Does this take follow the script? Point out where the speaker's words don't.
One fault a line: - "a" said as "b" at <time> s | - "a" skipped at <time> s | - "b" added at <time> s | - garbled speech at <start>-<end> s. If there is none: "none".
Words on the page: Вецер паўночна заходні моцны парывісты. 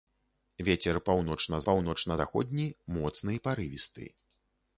- "паўночна" added at 1.7 s